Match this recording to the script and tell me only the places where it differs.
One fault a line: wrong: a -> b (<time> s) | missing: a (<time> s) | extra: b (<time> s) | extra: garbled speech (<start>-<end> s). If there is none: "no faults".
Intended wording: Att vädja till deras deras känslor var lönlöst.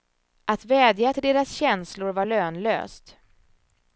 missing: deras (1.5 s)